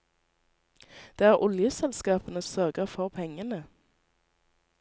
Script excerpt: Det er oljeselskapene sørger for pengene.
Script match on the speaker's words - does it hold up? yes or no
yes